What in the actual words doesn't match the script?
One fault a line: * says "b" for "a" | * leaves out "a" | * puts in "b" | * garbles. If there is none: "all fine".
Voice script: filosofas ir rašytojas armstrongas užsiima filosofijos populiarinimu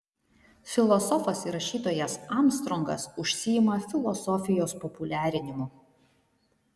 all fine